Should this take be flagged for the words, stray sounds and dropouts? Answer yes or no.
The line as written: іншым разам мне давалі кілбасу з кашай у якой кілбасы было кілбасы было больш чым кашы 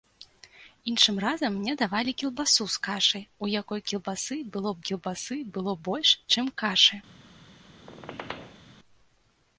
yes